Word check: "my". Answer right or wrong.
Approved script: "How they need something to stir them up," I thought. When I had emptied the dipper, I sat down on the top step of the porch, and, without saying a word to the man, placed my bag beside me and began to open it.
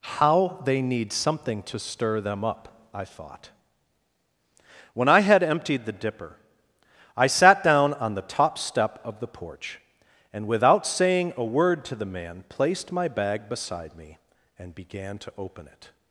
right